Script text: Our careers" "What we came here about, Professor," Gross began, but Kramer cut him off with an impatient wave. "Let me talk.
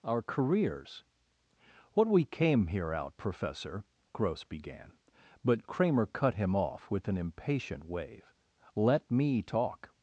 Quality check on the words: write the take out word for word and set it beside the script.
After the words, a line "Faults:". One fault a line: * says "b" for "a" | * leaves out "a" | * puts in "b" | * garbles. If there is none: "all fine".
Our careers" "What we came here out, Professor," Gross began, but Kramer cut him off with an impatient wave. "Let me talk.
Faults:
* says "out" for "about"